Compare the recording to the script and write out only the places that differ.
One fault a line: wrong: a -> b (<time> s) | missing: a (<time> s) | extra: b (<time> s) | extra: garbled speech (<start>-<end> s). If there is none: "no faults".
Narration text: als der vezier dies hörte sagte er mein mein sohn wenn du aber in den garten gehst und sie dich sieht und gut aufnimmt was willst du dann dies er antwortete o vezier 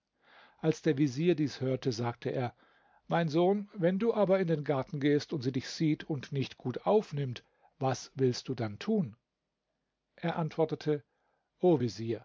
missing: mein (3.3 s)
extra: nicht (6.3 s)
wrong: dies -> tun (8.8 s)